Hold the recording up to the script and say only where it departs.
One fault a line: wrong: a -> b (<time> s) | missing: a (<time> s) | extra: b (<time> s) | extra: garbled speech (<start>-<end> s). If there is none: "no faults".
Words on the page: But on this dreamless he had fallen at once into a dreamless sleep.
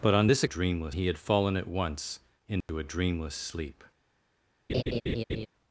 no faults